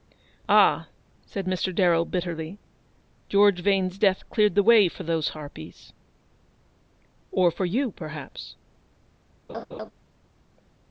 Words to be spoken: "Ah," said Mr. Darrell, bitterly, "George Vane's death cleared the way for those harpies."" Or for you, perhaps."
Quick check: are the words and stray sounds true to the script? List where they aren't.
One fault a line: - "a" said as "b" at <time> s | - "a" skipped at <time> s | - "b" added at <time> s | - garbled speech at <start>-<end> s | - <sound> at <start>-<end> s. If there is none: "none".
- laugh at 9.5-9.9 s